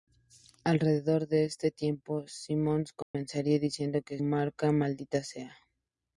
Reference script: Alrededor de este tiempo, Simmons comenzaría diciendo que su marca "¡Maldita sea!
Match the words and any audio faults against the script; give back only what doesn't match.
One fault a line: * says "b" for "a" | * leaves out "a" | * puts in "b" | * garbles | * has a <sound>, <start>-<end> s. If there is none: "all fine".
* has a dropout, 3.0-3.1 s
* leaves out "su"